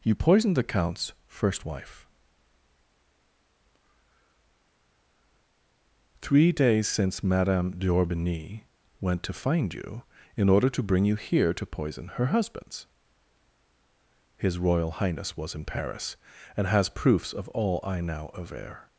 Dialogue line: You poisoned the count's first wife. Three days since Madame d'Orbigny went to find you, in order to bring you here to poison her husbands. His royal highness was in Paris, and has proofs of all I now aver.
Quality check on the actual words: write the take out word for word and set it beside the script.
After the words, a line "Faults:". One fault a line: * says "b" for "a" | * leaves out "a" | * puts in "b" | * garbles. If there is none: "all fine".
You poisoned the count's first wife. Three days since Madame d'Orbigny went to find you, in order to bring you here to poison her husbands. His royal highness was in Paris, and has proofs of all I now aver.
Faults:
all fine